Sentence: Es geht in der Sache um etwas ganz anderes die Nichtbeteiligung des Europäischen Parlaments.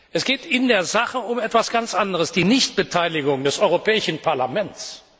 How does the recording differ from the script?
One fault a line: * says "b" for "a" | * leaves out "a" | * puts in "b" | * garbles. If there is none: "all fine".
all fine